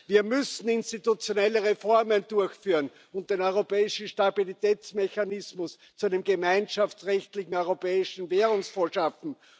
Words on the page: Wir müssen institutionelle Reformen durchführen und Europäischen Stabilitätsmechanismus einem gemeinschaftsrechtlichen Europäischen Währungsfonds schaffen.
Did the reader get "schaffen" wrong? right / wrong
right